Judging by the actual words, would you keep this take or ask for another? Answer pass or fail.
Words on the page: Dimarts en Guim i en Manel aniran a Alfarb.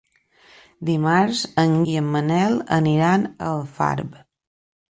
fail